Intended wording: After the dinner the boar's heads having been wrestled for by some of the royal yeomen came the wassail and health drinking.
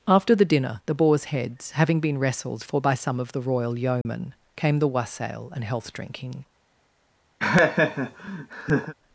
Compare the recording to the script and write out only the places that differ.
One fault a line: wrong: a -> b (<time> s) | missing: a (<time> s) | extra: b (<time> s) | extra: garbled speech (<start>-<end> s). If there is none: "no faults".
no faults